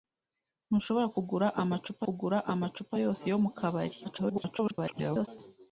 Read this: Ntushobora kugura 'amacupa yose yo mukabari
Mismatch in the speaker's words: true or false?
true